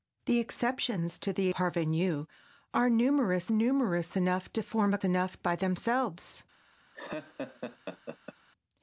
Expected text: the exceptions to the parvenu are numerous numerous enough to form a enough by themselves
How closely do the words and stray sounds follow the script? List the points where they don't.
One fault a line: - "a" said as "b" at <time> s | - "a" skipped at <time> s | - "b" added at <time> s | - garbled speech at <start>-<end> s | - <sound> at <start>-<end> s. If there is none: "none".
- laugh at 6.9-8.3 s